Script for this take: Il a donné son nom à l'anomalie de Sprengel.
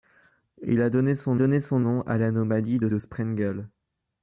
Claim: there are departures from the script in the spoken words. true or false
true